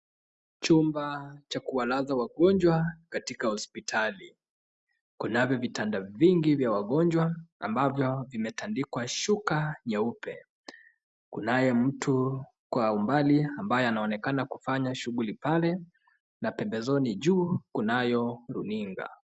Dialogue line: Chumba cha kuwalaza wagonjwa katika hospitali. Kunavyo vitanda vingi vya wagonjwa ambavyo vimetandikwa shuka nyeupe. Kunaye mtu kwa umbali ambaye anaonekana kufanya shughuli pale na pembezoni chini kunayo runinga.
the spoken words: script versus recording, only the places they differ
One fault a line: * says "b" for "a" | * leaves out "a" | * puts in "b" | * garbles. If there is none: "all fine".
* says "juu" for "chini"